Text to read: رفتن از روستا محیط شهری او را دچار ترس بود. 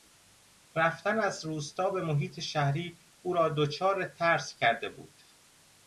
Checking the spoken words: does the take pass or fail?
fail